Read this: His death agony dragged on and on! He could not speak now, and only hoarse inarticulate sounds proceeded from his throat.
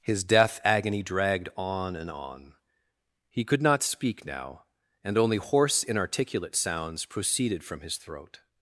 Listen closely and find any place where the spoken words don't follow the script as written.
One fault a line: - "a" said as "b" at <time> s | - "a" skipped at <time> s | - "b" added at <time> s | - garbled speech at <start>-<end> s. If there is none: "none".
none